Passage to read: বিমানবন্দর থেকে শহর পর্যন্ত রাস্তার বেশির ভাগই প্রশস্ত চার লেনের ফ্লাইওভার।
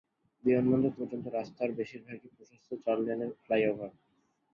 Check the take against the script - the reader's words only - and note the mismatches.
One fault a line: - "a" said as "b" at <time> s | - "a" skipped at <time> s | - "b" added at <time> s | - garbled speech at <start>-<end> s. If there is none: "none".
- "থেকে শহর" skipped at 0.9 s